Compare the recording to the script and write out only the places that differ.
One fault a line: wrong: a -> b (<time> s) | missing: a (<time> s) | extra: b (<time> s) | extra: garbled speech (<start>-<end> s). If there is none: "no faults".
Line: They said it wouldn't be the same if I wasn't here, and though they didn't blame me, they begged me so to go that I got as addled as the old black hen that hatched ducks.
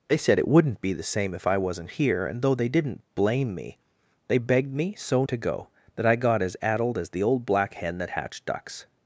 no faults